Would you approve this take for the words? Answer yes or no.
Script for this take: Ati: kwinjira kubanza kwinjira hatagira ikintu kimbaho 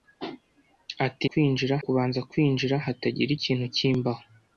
yes